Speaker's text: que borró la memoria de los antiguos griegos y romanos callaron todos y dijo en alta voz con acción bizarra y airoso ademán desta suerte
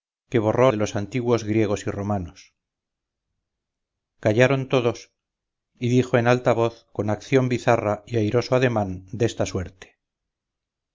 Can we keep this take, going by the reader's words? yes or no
no